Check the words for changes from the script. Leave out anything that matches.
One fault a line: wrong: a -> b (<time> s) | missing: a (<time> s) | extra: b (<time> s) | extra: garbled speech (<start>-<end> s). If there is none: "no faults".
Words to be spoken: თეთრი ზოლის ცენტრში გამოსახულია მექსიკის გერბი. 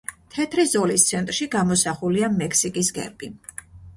no faults